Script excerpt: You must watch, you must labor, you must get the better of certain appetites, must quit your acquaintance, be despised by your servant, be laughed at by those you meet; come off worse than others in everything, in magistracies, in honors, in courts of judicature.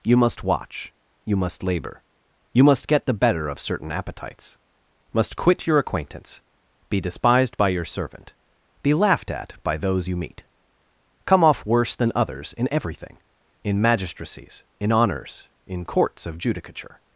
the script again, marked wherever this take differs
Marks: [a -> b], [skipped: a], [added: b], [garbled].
You must watch, you must labor, you must get the better of certain appetites, must quit your acquaintance, be despised by your servant, be laughed at by those you meet; come off worse than others in everything, in magistracies, in honors, in courts of judicature.